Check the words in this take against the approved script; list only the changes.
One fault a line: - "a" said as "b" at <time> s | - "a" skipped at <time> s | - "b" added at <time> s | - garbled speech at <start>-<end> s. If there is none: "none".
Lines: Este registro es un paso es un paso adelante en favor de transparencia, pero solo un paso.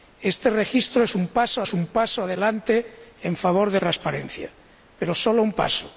none